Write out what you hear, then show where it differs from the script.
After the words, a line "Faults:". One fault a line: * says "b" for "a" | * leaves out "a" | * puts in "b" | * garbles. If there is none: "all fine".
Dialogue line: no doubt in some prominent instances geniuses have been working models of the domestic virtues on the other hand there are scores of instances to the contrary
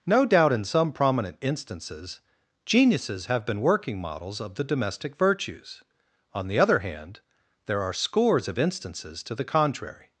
no doubt in some prominent instances geniuses have been working models of the domestic virtues on the other hand there are scores of instances to the contrary
Faults:
all fine